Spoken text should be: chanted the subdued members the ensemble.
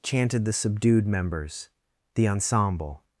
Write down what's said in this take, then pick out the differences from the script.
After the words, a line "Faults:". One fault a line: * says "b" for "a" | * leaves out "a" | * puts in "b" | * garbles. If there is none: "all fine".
chanted the subdued members the ensemble.
Faults:
all fine